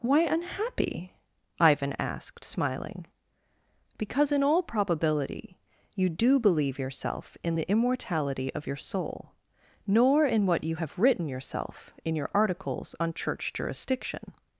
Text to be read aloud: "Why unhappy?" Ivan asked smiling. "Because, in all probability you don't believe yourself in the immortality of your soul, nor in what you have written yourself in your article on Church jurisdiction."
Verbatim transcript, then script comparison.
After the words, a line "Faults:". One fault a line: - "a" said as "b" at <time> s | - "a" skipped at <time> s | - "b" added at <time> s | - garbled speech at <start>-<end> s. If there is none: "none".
"Why unhappy?" Ivan asked smiling. "Because, in all probability you do believe yourself in the immortality of your soul, nor in what you have written yourself in your articles on Church jurisdiction."
Faults:
- "don't" said as "do" at 6.1 s
- "article" said as "articles" at 12.3 s